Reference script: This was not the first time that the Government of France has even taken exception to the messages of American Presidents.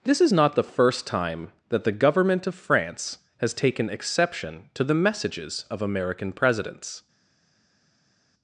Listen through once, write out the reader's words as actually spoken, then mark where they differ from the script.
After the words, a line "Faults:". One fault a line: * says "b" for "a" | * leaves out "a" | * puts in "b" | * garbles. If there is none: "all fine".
This is not the first time that the Government of France has taken exception to the messages of American Presidents.
Faults:
* says "is" for "was"
* leaves out "even"